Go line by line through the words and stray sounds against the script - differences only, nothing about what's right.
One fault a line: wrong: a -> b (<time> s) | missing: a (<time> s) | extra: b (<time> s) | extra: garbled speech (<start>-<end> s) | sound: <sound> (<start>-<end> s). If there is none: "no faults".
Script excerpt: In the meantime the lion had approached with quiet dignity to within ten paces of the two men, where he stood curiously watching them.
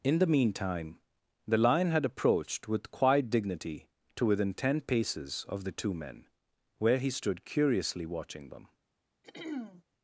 sound: throat clearing (9.2-9.8 s)